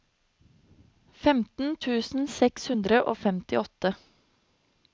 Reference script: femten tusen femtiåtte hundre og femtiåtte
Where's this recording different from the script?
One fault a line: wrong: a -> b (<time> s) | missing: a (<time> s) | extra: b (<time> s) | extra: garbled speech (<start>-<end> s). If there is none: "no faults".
wrong: femtiåtte -> seks (2.4 s)